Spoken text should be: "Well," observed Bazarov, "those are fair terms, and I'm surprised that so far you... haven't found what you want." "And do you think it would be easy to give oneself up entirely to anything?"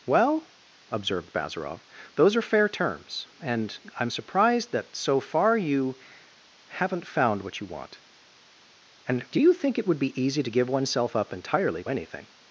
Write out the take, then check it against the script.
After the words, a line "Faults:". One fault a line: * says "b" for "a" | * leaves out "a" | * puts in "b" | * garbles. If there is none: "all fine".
"Well," observed Bazarov, "those are fair terms, and I'm surprised that so far you... haven't found what you want." "And do you think it would be easy to give oneself up entirely anything?"
Faults:
* leaves out "to"